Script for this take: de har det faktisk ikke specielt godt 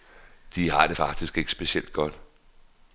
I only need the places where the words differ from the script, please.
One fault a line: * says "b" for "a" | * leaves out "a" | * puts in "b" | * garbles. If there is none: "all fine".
all fine